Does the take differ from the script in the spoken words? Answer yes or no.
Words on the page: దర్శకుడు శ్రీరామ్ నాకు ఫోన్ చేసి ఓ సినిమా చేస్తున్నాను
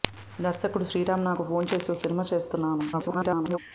yes